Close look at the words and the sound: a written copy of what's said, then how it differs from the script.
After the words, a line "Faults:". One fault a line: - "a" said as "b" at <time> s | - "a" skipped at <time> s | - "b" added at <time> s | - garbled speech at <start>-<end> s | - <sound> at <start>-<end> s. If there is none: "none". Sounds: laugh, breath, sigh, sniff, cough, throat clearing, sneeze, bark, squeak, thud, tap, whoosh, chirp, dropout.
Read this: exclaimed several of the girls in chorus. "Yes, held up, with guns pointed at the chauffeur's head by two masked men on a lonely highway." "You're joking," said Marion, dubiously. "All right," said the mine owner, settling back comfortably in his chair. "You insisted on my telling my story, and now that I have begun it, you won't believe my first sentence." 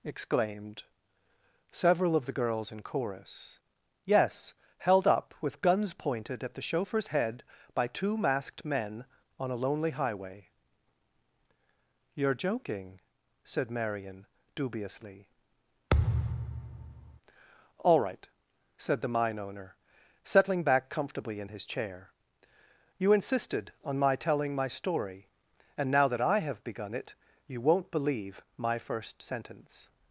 exclaimed several of the girls in chorus. "Yes, held up, with guns pointed at the chauffeur's head by two masked men on a lonely highway." "You're joking," said Marion, dubiously. "All right," said the mine owner, settling back comfortably in his chair. "You insisted on my telling my story, and now that I have begun it, you won't believe my first sentence."
Faults:
- thud at 15.9-17.2 s